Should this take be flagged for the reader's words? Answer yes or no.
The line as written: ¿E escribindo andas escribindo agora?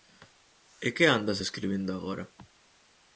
yes